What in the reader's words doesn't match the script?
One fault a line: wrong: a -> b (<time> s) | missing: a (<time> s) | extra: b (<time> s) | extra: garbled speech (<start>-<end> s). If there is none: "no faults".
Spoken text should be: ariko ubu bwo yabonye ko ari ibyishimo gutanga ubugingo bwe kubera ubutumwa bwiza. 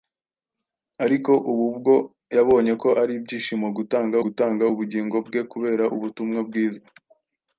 extra: gutanga (4.2 s)